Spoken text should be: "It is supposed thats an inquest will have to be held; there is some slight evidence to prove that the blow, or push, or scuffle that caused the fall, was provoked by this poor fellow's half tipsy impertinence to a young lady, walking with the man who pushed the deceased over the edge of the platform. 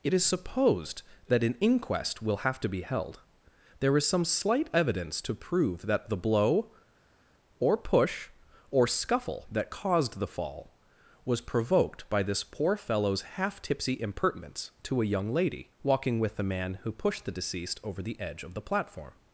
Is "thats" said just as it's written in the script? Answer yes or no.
no